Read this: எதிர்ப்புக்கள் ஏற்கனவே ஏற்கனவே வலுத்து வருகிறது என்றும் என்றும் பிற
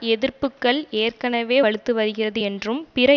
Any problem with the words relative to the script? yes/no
yes